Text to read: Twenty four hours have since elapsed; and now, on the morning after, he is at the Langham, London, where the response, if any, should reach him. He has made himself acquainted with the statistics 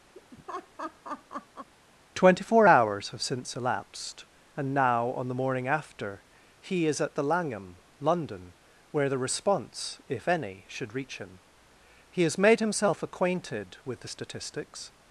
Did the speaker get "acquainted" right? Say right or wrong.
right